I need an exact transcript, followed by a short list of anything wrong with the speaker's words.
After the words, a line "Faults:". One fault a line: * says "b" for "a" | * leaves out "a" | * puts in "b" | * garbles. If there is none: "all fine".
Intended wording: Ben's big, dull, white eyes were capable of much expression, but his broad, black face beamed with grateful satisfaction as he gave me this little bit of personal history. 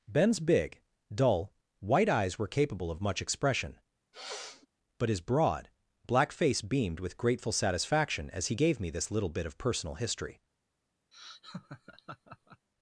Ben's big, dull, white eyes were capable of much expression, but his broad, black face beamed with grateful satisfaction as he gave me this little bit of personal history.
Faults:
all fine